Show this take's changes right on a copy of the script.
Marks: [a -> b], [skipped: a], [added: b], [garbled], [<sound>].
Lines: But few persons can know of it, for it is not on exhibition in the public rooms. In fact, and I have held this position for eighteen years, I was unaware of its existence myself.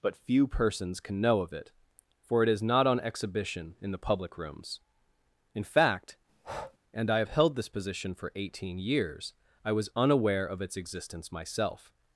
But few persons can know of it, for it is not on exhibition in the public rooms. In fact, [breath] and I have held this position for eighteen years, I was unaware of its existence myself.